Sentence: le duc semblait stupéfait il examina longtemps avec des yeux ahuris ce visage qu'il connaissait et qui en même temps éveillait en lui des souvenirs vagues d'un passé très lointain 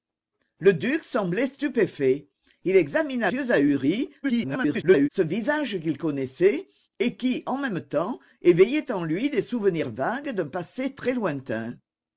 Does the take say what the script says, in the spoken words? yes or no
no